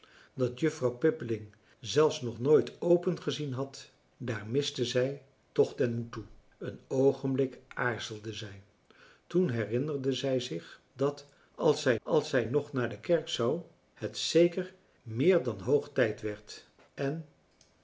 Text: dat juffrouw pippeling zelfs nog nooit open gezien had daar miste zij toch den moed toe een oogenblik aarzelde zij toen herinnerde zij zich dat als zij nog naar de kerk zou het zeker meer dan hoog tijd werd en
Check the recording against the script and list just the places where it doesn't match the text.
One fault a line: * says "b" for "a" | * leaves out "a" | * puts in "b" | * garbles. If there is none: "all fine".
* puts in "als zij"